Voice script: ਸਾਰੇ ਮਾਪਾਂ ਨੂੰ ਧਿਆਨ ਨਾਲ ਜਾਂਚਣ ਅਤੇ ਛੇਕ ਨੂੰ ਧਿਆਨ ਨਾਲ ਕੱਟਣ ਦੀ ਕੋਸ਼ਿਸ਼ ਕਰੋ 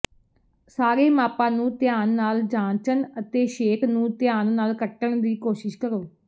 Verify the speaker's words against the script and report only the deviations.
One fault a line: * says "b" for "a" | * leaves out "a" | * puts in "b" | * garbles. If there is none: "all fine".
all fine